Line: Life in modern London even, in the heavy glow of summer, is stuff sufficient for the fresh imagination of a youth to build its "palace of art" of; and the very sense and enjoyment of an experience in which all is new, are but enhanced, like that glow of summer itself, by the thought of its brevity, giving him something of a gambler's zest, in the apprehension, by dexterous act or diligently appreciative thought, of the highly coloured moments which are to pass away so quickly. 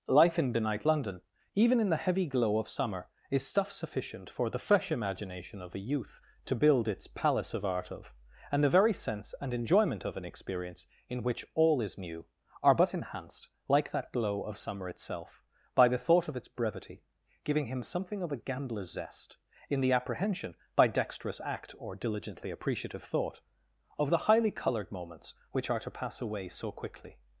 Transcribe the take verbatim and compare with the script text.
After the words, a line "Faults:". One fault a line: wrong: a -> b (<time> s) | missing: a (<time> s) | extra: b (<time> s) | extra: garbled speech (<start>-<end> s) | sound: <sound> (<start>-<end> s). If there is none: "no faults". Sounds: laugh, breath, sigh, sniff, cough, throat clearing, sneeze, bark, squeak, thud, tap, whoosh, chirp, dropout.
Life in benight London even, in the heavy glow of summer, is stuff sufficient for the fresh imagination of a youth to build its "palace of art" of; and the very sense and enjoyment of an experience in which all is new, are but enhanced, like that glow of summer itself, by the thought of its brevity, giving him something of a gambler's zest, in the apprehension, by dexterous act or diligently appreciative thought, of the highly coloured moments which are to pass away so quickly.
Faults:
wrong: modern -> benight (0.5 s)